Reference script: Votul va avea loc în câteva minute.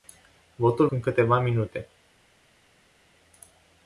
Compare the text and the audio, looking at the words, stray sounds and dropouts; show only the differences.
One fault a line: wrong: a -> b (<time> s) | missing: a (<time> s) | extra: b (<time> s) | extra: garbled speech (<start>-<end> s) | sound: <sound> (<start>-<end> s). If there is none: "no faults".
missing: va avea loc (0.9 s)